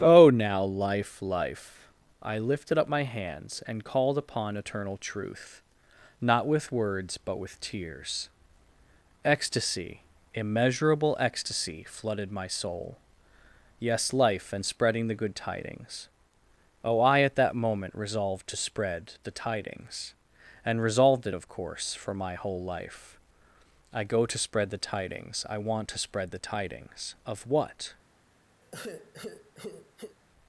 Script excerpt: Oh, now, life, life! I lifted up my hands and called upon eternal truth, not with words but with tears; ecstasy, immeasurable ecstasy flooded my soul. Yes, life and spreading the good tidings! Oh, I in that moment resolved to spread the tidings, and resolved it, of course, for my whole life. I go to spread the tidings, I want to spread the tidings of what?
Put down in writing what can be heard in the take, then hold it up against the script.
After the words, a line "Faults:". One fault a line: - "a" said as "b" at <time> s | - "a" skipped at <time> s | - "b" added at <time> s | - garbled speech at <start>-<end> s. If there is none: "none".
Oh, now, life, life! I lifted up my hands and called upon eternal truth, not with words but with tears; ecstasy, immeasurable ecstasy flooded my soul. Yes, life and spreading the good tidings! Oh, I at that moment resolved to spread the tidings, and resolved it, of course, for my whole life. I go to spread the tidings, I want to spread the tidings of what?
Faults:
- "in" said as "at" at 17.2 s